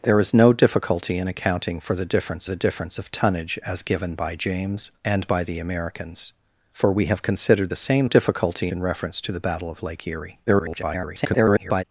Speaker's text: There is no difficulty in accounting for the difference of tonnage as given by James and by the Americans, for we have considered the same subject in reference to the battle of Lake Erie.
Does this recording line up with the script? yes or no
no